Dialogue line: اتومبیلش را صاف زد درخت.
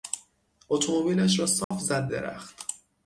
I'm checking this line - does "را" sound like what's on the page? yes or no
yes